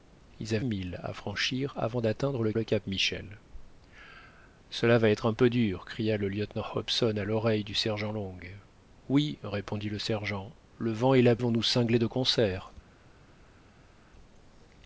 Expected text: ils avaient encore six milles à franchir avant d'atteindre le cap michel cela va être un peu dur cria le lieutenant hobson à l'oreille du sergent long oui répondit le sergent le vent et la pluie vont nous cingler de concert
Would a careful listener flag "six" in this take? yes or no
yes